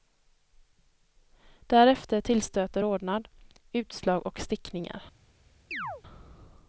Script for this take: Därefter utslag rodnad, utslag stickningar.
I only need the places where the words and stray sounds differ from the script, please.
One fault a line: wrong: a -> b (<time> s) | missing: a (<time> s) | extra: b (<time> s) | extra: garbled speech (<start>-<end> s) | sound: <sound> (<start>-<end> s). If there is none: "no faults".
wrong: utslag -> tillstöter (2.2 s)
extra: och (4.3 s)
sound: chirp (5.7-6.0 s)